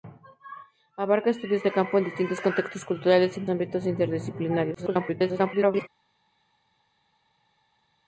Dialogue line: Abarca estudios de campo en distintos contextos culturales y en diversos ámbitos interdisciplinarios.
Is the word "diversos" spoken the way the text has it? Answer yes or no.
no